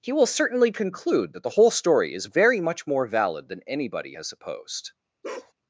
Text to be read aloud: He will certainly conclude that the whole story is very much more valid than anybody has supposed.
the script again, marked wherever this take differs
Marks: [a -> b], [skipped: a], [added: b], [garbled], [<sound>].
He will certainly conclude that the whole story is very much more valid than anybody has supposed. [bark]